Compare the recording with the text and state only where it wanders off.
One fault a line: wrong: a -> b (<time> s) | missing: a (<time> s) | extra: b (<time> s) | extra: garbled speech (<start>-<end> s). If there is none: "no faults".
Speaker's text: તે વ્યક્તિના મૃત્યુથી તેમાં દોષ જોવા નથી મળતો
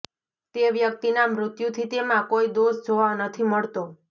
extra: કોઈ (2.3 s)